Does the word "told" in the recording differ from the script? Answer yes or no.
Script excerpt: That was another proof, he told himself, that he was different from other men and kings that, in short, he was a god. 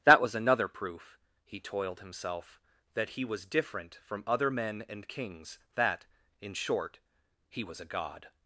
yes